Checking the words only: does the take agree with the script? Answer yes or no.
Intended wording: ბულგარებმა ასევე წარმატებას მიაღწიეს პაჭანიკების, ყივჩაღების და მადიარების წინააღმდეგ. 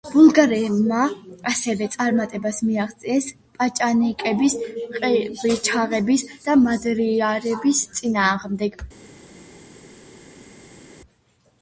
yes